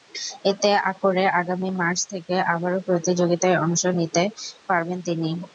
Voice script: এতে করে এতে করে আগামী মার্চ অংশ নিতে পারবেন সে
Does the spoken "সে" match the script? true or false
false